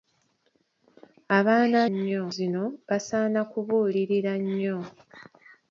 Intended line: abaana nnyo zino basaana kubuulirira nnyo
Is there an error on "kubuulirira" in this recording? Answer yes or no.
no